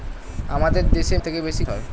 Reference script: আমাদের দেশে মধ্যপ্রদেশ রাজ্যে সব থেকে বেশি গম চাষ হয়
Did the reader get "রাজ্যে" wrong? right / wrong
wrong